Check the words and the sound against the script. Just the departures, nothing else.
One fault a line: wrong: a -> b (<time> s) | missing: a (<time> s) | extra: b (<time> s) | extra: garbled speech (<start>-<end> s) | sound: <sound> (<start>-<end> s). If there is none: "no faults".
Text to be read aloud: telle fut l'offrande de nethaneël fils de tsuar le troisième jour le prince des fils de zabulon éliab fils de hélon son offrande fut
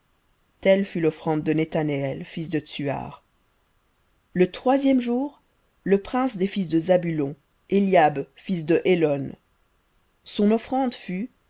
no faults